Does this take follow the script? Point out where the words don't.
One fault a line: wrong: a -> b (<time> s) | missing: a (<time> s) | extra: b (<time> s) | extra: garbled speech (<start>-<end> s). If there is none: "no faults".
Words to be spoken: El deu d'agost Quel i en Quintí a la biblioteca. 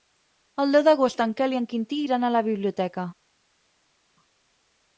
extra: en (1.2 s)
extra: iran (2.0 s)